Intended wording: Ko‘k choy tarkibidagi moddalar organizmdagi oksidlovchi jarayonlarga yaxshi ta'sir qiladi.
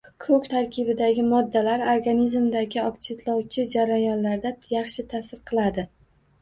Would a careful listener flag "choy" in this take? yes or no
yes